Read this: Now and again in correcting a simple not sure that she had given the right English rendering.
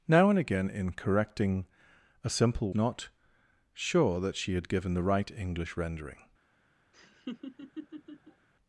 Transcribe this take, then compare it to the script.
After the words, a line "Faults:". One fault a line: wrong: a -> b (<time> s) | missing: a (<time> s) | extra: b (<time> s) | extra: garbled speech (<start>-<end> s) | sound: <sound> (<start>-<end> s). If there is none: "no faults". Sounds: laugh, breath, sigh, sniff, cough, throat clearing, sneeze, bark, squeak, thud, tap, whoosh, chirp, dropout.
Now and again in correcting a simple not sure that she had given the right English rendering.
Faults:
sound: laugh (6.9-8.5 s)